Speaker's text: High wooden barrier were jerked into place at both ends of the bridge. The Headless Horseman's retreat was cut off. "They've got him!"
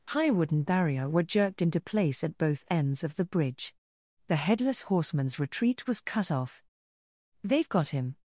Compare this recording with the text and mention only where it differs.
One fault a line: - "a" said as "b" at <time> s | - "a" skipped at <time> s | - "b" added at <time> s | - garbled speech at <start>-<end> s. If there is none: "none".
none